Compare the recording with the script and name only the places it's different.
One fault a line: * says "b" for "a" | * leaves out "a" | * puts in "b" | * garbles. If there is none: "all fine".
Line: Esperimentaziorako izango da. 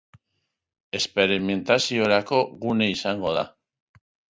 * puts in "gune"